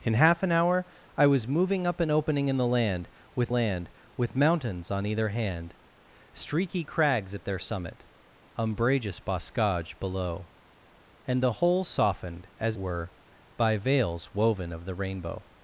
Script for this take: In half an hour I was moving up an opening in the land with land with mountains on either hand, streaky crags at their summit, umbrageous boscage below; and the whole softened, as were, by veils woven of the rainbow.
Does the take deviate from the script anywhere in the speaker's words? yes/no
no